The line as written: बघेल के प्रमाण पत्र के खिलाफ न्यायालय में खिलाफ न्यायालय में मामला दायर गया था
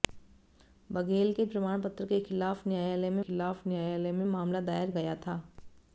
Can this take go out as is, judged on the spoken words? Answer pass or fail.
pass